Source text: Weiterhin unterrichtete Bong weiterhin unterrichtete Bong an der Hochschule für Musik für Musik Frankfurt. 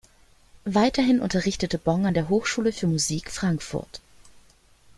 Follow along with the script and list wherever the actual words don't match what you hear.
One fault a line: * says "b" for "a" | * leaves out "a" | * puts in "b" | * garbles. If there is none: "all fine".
* leaves out "weiterhin unterrichtete Bong"
* leaves out "für Musik"